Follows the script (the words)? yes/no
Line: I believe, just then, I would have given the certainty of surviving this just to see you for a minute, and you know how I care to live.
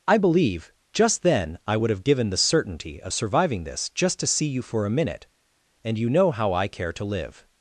yes